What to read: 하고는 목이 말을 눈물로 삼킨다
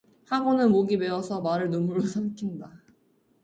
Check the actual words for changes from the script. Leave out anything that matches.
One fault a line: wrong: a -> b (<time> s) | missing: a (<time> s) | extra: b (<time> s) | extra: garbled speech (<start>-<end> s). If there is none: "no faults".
extra: 메어서 (0.9 s)